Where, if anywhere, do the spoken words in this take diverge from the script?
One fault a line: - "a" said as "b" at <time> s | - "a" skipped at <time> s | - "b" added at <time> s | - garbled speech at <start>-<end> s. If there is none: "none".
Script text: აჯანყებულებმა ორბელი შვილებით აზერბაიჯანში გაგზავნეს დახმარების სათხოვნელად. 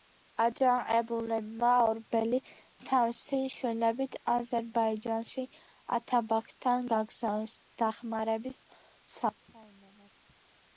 - "თავისი" added at 2.9 s
- "ათაბაგთან" added at 6.0 s